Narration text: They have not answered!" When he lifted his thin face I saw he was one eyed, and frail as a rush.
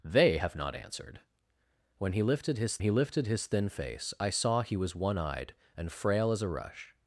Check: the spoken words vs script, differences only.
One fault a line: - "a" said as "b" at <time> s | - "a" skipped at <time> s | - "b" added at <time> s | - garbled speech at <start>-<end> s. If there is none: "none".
- "he lifted his" added at 2.8 s